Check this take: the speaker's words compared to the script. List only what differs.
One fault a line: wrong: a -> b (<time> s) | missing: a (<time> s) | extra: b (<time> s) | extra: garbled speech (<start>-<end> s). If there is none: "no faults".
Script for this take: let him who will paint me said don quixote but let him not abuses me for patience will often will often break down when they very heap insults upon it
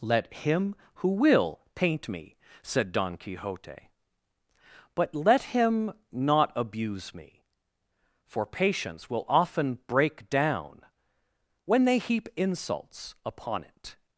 wrong: abuses -> abuse (6.5 s)
missing: will often (9.8 s)
missing: very (12.0 s)